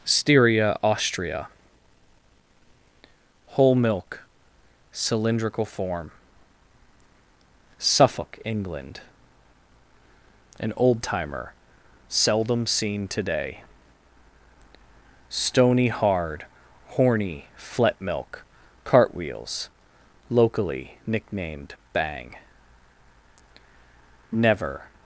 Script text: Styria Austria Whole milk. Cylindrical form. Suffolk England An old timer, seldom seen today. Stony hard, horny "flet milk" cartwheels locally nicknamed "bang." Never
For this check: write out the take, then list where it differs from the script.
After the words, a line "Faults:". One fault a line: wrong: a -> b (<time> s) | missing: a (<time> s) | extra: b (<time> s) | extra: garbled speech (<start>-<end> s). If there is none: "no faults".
Styria Austria Whole milk. Cylindrical form. Suffolk England An old timer, seldom seen today. Stony hard, horny "flet milk" cartwheels locally nicknamed "bang." Never
Faults:
no faults